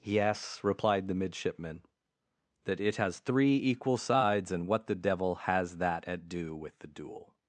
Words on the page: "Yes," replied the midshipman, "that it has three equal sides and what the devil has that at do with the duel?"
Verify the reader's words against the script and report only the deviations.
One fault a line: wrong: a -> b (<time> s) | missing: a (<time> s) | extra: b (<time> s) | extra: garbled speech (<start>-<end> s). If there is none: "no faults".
no faults